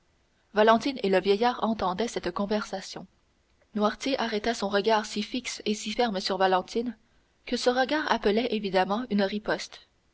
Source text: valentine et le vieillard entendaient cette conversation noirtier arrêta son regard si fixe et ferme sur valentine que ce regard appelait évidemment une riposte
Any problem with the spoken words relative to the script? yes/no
yes